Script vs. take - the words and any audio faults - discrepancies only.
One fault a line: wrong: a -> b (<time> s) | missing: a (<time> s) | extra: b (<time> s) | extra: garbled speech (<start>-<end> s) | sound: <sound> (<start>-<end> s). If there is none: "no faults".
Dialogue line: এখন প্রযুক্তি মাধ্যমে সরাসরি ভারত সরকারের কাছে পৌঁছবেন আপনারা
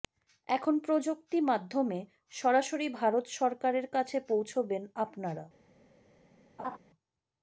sound: laugh (6.6-6.8 s)